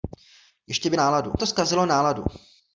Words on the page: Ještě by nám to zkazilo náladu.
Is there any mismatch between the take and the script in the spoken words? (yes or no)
yes